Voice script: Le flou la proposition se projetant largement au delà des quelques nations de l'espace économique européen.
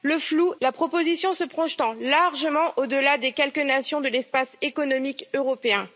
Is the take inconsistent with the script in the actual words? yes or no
no